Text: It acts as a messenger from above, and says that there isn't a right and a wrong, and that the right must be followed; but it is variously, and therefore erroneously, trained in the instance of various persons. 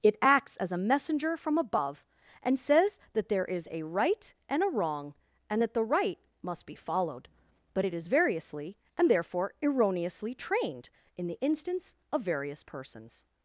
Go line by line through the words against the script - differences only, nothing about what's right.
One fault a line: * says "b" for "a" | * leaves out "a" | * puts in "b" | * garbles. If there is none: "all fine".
* says "is" for "isn't"